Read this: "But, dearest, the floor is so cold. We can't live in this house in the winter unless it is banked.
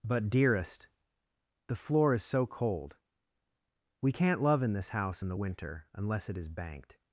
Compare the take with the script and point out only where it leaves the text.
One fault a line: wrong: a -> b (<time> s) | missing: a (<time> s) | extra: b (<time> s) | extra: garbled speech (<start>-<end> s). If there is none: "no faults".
wrong: live -> love (4.4 s)